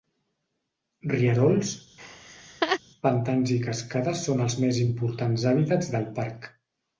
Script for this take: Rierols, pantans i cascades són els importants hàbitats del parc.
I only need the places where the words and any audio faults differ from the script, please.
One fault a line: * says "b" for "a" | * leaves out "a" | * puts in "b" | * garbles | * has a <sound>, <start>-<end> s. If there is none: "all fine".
* has a laugh, 2.0-2.8 s
* puts in "més"